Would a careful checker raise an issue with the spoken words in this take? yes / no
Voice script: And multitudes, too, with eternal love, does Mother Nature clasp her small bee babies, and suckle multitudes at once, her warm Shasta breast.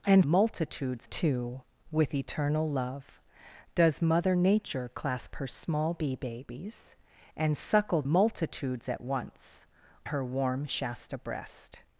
no